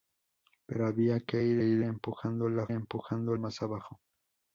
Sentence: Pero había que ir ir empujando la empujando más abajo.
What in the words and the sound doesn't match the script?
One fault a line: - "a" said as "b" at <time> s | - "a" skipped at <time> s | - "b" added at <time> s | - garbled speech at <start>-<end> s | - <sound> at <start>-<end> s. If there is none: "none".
none